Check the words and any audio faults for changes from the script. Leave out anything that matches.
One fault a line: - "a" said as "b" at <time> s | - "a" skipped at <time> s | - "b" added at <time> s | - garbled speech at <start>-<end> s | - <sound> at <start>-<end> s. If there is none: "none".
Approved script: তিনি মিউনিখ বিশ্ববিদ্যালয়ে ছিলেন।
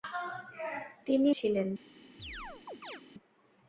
- "মিউনিখ বিশ্ববিদ্যালয়ে" skipped at 1.3 s
- chirp at 2.2-3.0 s